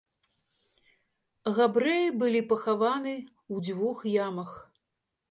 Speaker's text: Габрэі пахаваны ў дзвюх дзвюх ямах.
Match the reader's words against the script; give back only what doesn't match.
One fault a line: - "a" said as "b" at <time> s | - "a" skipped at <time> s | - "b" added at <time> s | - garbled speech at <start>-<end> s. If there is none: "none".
- "былі" added at 2.2 s
- "дзвюх" skipped at 4.0 s